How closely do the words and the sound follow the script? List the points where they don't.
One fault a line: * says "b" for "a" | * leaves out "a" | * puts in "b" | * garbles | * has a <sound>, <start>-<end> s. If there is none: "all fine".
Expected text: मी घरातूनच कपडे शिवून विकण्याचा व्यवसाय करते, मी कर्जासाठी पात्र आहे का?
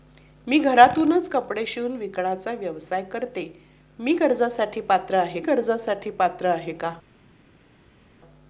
* puts in "कर्जासाठी पात्र आहे"